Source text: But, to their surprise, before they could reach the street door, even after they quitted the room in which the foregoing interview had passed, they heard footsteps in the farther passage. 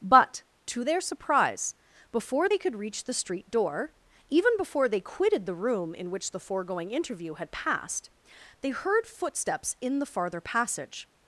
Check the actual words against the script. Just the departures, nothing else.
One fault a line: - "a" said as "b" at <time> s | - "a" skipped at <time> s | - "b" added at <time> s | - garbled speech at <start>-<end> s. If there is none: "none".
- "after" said as "before" at 4.6 s